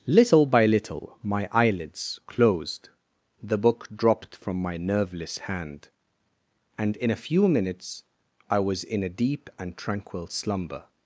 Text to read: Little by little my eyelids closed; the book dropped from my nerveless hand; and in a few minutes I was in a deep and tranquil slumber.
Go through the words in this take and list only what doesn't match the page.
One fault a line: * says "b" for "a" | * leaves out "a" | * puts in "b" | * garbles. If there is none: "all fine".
all fine